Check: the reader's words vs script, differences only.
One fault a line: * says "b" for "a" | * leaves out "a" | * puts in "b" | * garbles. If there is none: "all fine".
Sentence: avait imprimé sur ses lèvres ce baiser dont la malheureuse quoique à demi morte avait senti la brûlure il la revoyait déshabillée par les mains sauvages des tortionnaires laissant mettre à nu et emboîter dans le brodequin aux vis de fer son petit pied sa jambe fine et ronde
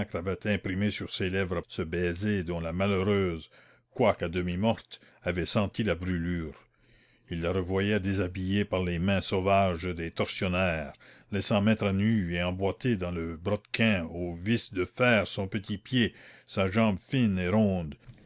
all fine